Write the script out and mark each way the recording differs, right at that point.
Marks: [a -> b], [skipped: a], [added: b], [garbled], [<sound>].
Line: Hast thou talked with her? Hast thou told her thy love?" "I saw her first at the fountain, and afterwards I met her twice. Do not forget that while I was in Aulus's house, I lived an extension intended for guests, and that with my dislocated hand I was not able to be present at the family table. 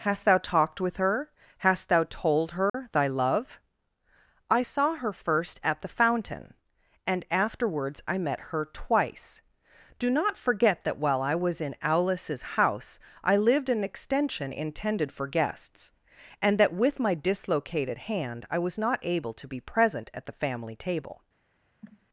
Hast thou talked with her? Hast thou told her [dropout] thy love?" "I saw her first at the fountain, and afterwards I met her twice. Do not forget that while I was in Aulus's house, I lived an extension intended for guests, and that with my dislocated hand I was not able to be present at the family table. [cough]